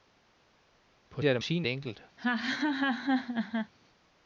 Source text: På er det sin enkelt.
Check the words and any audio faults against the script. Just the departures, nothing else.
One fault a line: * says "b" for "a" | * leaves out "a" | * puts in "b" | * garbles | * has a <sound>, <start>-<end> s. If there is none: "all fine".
* has a laugh, 2.2-3.7 s